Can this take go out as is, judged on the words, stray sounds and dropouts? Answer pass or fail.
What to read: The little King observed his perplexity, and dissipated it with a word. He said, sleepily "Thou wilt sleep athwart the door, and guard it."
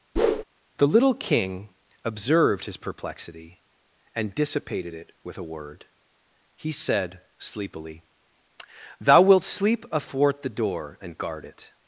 fail